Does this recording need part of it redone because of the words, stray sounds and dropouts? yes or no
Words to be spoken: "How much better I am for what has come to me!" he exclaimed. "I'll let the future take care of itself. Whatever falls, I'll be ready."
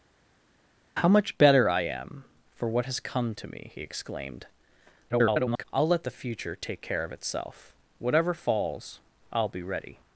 yes